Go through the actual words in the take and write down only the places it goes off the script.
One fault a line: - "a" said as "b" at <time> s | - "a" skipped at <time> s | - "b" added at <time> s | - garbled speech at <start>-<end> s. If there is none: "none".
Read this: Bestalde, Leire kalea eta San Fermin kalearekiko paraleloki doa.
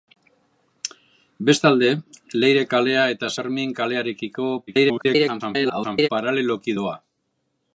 - "San" skipped at 3.3 s
- garbled speech at 4.7-6.1 s